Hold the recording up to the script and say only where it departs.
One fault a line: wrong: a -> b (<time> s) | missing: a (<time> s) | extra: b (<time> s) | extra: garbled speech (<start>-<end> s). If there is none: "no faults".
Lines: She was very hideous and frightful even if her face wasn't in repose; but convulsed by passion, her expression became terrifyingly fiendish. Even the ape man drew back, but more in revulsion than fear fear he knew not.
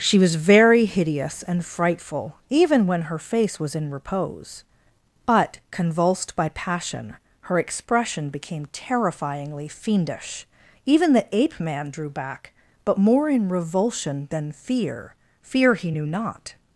wrong: if -> when (2.9 s)
wrong: wasn't -> was (3.6 s)